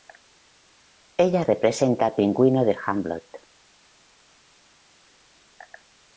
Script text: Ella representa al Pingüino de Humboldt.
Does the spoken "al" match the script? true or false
true